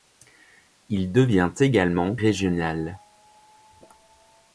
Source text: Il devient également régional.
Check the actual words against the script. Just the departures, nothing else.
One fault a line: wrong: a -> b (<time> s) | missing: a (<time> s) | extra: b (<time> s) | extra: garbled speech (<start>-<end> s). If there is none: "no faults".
no faults